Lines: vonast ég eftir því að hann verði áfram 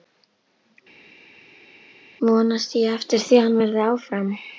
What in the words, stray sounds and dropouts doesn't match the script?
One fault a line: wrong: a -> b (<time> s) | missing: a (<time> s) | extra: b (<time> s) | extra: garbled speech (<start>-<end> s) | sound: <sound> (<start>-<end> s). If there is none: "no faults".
no faults